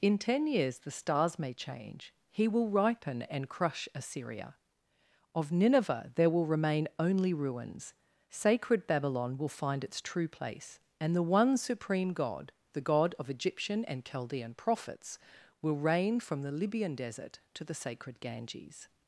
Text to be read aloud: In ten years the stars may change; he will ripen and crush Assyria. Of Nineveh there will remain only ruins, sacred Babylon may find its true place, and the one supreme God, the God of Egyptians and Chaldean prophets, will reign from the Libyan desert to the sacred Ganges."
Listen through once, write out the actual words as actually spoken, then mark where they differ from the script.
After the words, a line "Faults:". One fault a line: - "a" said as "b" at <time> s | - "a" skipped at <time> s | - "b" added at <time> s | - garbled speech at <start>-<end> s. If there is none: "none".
In ten years the stars may change; he will ripen and crush Assyria. Of Nineveh there will remain only ruins, sacred Babylon will find its true place, and the one supreme God, the God of Egyptian and Chaldean prophets, will reign from the Libyan desert to the sacred Ganges."
Faults:
- "may" said as "will" at 9.4 s
- "Egyptians" said as "Egyptian" at 13.3 s